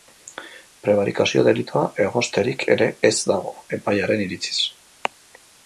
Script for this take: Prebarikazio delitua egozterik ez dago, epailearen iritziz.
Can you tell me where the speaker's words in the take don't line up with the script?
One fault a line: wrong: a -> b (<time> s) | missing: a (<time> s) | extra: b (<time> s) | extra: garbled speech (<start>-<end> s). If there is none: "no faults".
extra: ere (2.8 s)